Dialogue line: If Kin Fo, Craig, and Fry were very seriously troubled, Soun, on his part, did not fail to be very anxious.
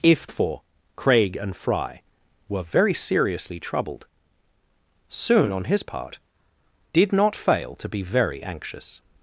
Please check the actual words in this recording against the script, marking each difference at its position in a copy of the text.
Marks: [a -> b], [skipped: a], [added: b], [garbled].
If [skipped: Kin] Fo, Craig, and Fry were very seriously troubled, Soun, on his part, did not fail to be very anxious.